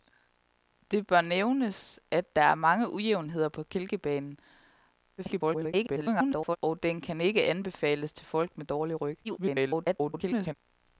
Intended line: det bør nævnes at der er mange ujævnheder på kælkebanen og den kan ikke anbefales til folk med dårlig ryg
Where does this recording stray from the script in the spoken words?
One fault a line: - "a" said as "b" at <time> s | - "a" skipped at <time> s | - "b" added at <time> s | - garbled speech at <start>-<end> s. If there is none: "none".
- garbled speech at 5.2-6.6 s
- garbled speech at 9.2-10.5 s